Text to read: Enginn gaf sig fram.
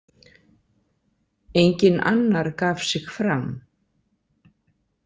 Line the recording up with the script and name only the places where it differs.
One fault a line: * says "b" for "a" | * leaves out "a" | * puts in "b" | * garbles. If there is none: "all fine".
* puts in "annar"